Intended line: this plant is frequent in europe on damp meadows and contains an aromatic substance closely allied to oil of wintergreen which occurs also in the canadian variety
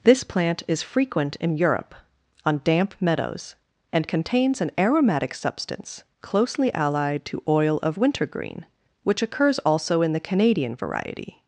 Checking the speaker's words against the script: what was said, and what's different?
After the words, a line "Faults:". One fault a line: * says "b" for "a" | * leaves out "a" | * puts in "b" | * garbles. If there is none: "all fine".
this plant is frequent in europe on damp meadows and contains an aromatic substance closely allied to oil of wintergreen which occurs also in the canadian variety
Faults:
all fine